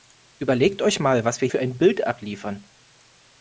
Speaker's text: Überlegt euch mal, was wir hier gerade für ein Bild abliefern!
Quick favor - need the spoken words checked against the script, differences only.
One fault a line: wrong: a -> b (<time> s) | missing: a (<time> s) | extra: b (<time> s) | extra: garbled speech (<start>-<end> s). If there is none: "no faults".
missing: hier gerade (1.5 s)